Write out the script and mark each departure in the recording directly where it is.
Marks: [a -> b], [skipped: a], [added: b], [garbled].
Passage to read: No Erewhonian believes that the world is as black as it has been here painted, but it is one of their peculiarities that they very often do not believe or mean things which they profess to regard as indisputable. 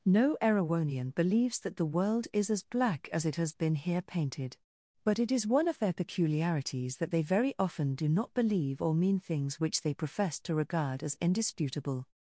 No Erewhonian believes that the world is as black as it has been here painted, but it is one of their peculiarities that they very often do not believe or mean things which they profess to regard as indisputable.